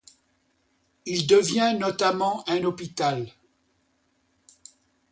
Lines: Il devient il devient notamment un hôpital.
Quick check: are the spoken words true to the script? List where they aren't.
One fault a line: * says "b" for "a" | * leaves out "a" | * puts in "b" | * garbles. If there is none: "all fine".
* leaves out "il devient"